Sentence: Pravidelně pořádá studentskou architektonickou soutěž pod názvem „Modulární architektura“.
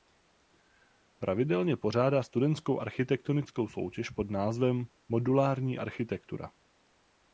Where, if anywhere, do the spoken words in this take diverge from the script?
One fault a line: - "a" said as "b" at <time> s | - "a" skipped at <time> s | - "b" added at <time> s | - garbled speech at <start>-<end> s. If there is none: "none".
none